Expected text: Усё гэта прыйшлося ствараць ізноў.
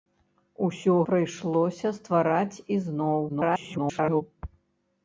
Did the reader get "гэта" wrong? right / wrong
wrong